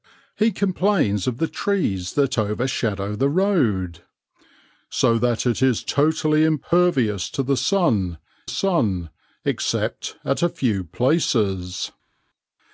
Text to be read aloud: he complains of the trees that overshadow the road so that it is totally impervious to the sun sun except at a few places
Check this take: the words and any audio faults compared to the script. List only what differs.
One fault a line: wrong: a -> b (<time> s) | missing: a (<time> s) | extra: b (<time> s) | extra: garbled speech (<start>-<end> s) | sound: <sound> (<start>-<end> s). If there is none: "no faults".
no faults